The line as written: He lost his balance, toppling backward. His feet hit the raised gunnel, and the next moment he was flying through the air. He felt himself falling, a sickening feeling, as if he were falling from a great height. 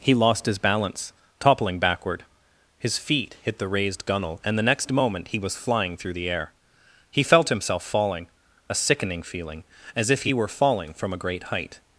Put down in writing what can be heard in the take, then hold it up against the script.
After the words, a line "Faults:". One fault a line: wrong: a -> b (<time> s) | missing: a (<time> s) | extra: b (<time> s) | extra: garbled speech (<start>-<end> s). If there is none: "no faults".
He lost his balance, toppling backward. His feet hit the raised gunnel, and the next moment he was flying through the air. He felt himself falling, a sickening feeling, as if he were falling from a great height.
Faults:
no faults